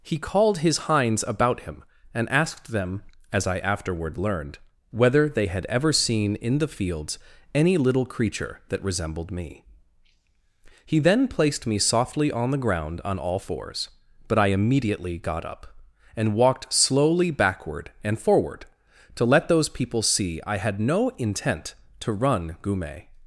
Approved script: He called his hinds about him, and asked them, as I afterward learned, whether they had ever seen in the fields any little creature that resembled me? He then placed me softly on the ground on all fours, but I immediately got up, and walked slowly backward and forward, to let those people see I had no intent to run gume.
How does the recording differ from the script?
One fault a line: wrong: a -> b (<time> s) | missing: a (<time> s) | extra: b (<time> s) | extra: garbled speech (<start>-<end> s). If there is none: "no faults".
no faults